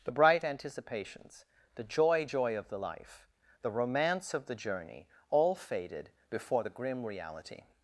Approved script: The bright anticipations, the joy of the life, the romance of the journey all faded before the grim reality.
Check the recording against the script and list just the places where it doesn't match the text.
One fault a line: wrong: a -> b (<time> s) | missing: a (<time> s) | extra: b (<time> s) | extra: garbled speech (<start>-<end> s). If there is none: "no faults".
extra: joy (2.2 s)